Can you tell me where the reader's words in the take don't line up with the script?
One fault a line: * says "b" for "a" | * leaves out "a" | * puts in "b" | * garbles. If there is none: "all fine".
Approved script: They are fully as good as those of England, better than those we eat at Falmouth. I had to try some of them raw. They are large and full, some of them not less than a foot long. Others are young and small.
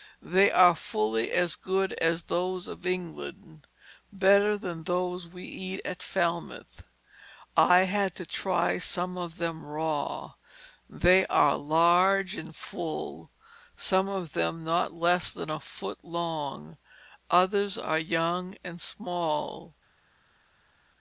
all fine